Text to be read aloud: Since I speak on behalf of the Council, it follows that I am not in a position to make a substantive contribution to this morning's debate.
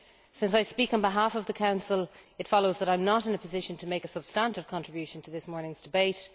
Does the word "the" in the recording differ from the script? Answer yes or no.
no